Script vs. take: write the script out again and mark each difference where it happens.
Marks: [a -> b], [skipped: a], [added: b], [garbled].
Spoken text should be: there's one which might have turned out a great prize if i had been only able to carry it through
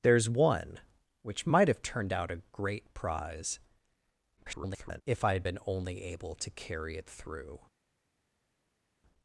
there's one which might have turned out a great prize [garbled] if i had been only able to carry it through